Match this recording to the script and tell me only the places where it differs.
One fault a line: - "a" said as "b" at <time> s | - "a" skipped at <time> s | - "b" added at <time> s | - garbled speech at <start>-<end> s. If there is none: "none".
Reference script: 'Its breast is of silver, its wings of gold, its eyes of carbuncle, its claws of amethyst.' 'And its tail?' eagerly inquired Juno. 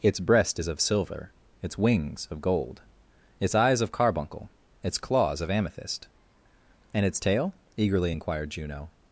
none